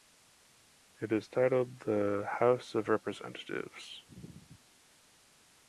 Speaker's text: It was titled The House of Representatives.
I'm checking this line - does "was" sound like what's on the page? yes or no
no